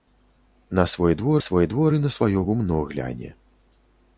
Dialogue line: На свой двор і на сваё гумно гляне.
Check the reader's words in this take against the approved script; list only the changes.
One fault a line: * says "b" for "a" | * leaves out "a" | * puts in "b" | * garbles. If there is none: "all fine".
* puts in "свой двор"